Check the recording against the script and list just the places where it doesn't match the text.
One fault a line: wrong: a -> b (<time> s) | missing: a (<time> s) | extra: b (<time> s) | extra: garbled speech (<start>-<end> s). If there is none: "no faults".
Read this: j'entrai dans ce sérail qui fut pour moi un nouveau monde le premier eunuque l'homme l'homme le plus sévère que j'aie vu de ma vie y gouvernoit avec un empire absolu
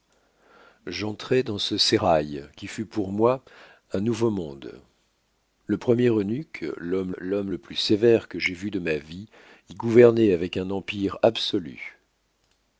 no faults